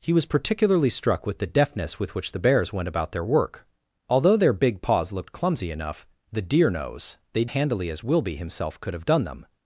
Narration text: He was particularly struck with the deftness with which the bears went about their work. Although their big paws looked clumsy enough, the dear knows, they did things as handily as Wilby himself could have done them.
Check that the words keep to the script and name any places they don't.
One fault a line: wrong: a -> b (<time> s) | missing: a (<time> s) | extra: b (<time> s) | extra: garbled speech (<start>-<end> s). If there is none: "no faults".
missing: did things as (7.5 s)